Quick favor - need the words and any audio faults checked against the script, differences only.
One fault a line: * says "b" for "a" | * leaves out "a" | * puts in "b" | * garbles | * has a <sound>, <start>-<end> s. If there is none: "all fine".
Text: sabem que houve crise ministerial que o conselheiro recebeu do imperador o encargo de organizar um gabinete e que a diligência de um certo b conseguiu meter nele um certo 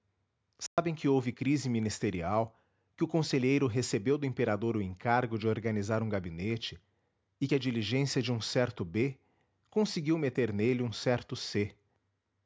* has a dropout, 0.7-0.8 s